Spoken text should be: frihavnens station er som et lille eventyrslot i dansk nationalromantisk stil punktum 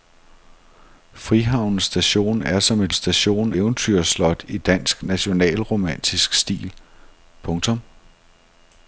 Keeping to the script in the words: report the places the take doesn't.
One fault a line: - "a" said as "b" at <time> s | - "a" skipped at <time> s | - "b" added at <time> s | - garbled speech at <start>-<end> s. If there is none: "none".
- "lille" said as "station" at 2.9 s